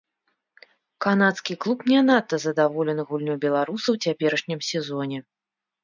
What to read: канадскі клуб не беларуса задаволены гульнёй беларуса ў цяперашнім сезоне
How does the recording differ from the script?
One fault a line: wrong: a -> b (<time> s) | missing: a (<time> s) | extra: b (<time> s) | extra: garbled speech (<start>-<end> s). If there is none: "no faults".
wrong: беларуса -> надта (2.1 s)